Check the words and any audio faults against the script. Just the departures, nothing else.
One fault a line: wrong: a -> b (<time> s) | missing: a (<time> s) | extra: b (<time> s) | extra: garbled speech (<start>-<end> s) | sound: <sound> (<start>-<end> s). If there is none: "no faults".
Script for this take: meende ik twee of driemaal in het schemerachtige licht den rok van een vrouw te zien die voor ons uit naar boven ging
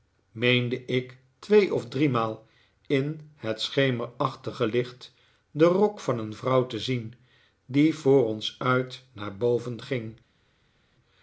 no faults